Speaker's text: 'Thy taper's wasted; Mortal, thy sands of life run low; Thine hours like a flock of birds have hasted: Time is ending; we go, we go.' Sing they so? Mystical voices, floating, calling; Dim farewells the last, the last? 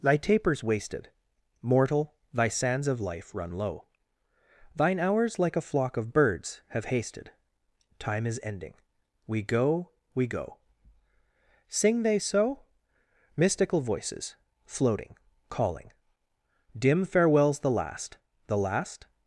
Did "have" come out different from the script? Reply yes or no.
no